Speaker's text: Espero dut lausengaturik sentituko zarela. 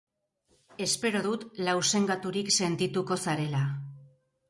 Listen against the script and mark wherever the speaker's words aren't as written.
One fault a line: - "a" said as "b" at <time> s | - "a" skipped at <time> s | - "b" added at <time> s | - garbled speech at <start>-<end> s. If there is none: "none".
none